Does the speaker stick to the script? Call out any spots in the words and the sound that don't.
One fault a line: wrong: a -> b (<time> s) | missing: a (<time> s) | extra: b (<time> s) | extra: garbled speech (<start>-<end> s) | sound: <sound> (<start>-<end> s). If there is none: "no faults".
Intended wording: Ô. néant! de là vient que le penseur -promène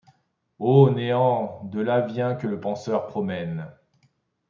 no faults